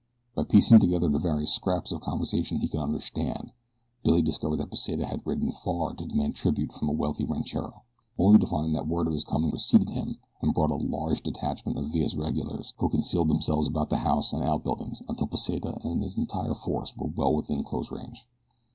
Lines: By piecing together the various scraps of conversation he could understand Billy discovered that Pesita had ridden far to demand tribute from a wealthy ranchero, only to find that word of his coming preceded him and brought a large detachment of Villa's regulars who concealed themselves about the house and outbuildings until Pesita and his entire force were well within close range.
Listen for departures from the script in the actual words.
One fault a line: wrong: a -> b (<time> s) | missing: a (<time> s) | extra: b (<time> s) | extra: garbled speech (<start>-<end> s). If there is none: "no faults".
no faults